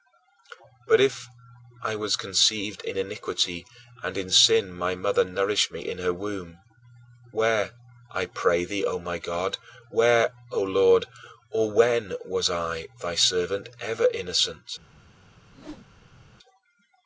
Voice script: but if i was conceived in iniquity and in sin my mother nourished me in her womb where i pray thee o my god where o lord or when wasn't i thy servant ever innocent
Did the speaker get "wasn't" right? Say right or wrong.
wrong